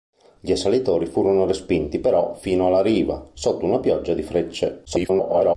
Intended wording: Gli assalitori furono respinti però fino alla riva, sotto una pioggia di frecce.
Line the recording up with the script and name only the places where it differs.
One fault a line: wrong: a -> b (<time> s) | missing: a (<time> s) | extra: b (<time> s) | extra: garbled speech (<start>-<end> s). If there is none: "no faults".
extra: garbled speech (4.9-5.6 s)